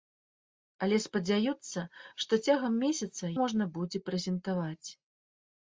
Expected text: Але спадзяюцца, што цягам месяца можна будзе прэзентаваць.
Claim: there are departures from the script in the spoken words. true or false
false